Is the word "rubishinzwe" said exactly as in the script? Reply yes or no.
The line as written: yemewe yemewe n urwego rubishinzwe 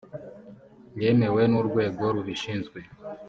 yes